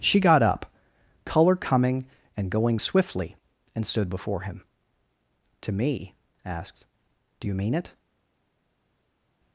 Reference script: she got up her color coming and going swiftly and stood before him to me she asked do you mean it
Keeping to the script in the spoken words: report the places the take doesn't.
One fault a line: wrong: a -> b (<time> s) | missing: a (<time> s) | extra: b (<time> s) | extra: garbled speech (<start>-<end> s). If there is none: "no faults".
missing: her (0.7 s)
missing: she (6.1 s)